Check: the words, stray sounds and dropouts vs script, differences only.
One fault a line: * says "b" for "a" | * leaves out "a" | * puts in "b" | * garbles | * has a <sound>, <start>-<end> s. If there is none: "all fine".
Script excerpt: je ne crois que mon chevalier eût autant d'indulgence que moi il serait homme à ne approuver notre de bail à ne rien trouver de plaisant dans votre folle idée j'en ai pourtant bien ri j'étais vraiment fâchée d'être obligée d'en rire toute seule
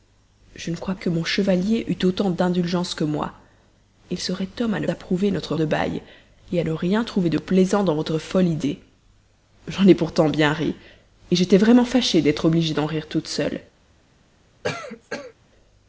* has a cough, 14.6-15.3 s